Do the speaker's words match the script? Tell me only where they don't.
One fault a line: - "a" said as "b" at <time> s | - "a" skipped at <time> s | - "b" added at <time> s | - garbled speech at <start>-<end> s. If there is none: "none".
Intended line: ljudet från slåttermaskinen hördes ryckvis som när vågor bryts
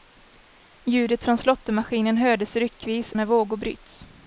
- "som" skipped at 3.1 s